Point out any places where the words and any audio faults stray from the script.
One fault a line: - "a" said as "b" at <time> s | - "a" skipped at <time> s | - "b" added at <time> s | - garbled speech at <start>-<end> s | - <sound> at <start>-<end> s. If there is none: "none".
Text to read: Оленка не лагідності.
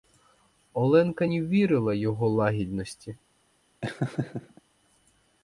- "вірила його" added at 1.4 s
- laugh at 3.8-4.6 s